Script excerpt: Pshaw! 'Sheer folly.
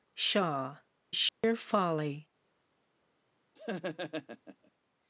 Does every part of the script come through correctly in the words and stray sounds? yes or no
no